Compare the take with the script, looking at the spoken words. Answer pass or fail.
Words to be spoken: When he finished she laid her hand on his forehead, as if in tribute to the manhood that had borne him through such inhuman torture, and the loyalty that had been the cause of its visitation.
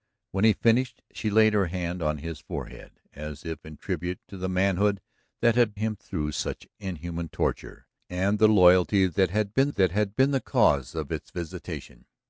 fail